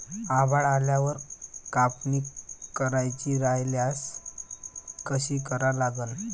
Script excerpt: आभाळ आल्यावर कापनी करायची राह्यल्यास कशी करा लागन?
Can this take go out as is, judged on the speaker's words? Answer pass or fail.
pass